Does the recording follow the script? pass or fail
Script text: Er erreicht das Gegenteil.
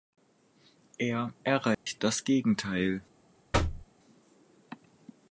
pass